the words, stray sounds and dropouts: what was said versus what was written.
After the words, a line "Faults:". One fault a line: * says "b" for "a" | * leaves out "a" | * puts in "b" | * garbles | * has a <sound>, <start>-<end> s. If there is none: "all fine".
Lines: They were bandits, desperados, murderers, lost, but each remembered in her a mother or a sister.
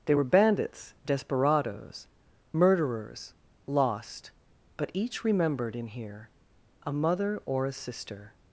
They were bandits, desperados, murderers, lost, but each remembered in here a mother or a sister.
Faults:
* says "here" for "her"